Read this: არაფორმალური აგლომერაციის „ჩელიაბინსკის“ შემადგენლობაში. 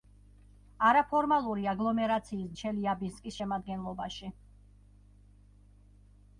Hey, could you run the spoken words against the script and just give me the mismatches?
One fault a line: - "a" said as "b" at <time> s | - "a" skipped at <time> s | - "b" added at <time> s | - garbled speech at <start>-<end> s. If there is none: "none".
none